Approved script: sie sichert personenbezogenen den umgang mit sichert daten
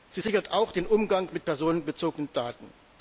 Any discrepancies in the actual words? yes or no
yes